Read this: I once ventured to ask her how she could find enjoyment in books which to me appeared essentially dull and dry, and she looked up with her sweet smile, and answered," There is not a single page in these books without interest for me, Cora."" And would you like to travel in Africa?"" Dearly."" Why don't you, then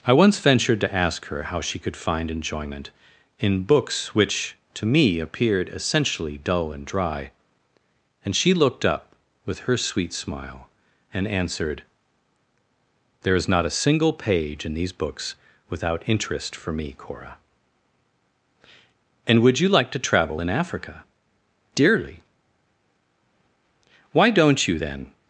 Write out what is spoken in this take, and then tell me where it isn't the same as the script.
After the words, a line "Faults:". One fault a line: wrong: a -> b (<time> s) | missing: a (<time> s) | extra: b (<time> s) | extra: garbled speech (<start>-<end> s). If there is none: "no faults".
I once ventured to ask her how she could find enjoyment in books which to me appeared essentially dull and dry, and she looked up with her sweet smile, and answered," There is not a single page in these books without interest for me, Cora."" And would you like to travel in Africa?"" Dearly."" Why don't you, then
Faults:
no faults